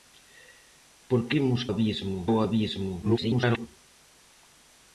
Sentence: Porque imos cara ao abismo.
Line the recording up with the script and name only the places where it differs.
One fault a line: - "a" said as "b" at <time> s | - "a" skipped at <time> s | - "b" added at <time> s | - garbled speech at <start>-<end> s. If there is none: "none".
- "cara" said as "abismo" at 1.7 s
- garbled speech at 3.0-3.7 s